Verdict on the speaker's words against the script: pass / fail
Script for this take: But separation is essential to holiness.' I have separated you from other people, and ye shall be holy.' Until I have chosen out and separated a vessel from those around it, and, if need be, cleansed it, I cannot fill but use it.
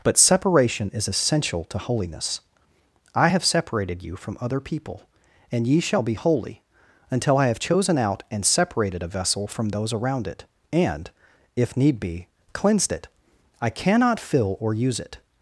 fail